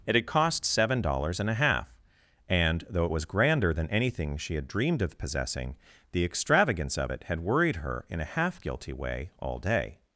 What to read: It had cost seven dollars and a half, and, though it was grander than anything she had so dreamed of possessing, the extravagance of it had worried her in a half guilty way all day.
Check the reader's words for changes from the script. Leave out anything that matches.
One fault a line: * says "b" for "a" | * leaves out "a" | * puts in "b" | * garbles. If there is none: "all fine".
* leaves out "so"